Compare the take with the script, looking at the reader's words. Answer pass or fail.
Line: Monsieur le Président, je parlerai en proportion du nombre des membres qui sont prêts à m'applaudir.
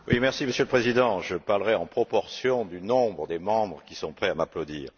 pass